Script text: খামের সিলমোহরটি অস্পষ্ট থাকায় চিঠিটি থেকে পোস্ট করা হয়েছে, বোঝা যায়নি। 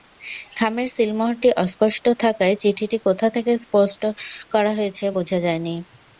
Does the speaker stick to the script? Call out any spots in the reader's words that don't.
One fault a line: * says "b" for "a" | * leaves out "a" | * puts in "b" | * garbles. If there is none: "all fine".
* puts in "কোথা"